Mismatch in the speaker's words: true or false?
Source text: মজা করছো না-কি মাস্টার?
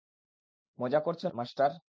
true